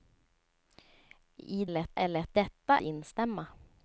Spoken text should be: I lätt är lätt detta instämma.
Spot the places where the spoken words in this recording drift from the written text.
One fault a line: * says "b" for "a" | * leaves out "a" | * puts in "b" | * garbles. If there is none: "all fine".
all fine